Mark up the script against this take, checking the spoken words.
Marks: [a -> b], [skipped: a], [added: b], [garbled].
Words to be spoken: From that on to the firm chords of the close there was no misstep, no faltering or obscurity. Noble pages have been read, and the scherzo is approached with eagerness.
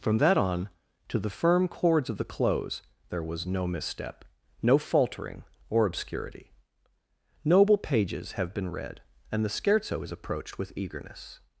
From that on to the firm chords of the close there was no misstep, no faltering or obscurity. Noble pages have been read, and the scherzo is approached with eagerness.